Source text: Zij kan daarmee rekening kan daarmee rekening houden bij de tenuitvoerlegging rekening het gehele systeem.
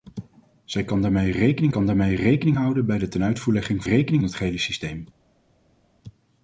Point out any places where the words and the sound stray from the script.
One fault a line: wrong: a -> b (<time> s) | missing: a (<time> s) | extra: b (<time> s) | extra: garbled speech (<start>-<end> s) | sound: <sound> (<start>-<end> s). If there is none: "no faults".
no faults